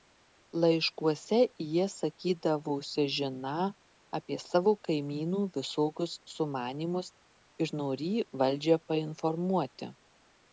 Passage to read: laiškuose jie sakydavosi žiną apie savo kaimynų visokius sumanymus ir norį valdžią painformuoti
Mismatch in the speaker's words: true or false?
false